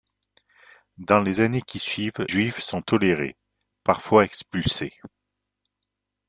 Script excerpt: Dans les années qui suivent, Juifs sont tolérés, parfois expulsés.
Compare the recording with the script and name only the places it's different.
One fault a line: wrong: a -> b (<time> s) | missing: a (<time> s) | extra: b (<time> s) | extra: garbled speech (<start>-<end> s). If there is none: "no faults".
no faults